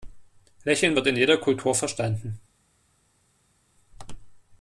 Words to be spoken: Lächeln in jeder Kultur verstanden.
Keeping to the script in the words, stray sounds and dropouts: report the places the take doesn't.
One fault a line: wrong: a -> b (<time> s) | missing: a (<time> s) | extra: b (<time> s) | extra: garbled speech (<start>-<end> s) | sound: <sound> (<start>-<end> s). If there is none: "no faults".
extra: wird (1.0 s)